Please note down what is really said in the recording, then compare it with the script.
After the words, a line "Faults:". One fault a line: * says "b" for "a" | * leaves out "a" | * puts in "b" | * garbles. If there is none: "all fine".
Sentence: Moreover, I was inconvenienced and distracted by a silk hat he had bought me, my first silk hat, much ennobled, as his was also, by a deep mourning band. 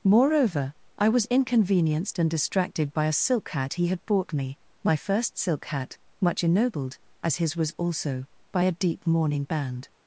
Moreover, I was inconvenienced and distracted by a silk hat he had bought me, my first silk hat, much ennobled, as his was also, by a deep mourning band.
Faults:
all fine